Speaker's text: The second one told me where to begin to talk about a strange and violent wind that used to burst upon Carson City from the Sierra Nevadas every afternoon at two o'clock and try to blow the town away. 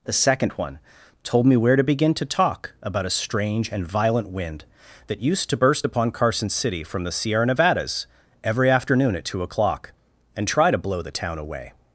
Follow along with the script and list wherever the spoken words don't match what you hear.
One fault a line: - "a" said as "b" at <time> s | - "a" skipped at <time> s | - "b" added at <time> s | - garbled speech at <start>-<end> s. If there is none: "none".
none